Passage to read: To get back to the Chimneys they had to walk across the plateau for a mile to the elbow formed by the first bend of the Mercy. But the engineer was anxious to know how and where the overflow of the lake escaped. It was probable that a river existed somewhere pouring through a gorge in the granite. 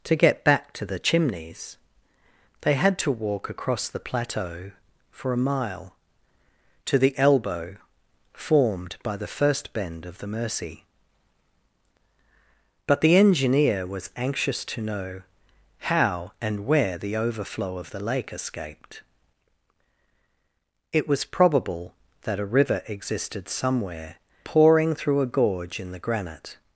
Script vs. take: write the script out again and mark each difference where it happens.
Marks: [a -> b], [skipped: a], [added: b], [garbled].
To get back to the Chimneys they had to walk across the plateau for a mile to the elbow formed by the first bend of the Mercy. But the engineer was anxious to know how and where the overflow of the lake escaped. It was probable that a river existed somewhere pouring through a gorge in the granite.